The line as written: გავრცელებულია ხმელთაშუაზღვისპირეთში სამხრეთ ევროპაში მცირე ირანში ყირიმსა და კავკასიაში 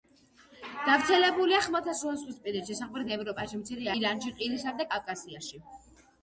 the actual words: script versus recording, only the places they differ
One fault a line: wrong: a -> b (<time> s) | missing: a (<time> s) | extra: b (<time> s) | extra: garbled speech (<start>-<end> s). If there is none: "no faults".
no faults